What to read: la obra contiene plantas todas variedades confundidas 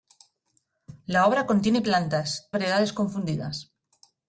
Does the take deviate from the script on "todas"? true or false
true